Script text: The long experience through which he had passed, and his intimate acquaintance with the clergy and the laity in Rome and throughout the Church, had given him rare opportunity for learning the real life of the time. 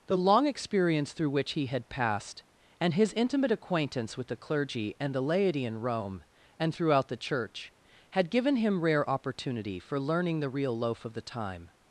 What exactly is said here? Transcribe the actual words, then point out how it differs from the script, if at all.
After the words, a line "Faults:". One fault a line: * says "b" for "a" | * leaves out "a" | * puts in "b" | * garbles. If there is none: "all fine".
The long experience through which he had passed, and his intimate acquaintance with the clergy and the laity in Rome and throughout the Church, had given him rare opportunity for learning the real loaf of the time.
Faults:
* says "loaf" for "life"